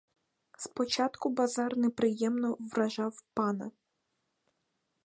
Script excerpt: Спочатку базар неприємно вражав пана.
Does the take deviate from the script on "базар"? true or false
false